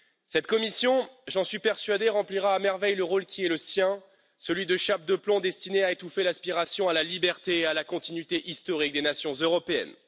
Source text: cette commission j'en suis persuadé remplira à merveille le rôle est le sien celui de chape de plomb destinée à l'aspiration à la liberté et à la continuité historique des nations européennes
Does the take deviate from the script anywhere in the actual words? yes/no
yes